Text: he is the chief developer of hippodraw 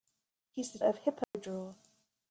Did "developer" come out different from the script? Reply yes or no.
yes